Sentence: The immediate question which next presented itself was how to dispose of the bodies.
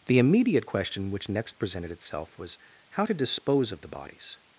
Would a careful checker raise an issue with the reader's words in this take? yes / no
no